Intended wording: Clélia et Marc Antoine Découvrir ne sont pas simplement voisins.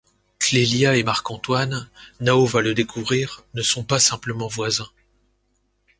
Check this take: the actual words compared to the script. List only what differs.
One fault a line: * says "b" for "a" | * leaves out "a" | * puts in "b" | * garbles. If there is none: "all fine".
* puts in "Nao va le"